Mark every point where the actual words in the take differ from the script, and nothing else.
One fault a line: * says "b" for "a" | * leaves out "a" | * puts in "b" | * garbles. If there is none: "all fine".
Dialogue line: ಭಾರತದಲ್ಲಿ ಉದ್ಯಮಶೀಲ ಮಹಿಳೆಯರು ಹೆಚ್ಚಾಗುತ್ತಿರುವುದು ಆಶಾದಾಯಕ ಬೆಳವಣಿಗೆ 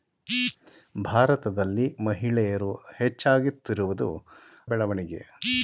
* leaves out "ಉದ್ಯಮಶೀಲ"
* leaves out "ಆಶಾದಾಯಕ"